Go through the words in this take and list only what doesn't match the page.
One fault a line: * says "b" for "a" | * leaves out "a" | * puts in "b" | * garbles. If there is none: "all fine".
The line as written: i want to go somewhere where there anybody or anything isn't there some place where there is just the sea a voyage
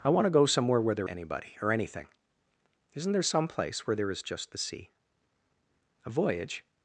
all fine